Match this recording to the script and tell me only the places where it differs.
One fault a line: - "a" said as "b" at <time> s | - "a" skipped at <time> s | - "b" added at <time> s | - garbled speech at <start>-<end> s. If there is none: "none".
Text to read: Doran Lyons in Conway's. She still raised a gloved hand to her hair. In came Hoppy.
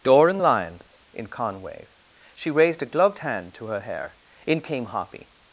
- "still" skipped at 2.5 s